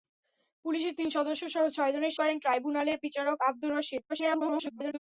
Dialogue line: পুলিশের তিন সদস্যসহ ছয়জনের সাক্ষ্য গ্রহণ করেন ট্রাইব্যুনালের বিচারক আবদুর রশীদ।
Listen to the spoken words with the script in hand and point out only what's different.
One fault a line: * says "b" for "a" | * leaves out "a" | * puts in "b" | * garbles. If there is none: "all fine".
* leaves out "সাক্ষ্য গ্রহণ"
* garbles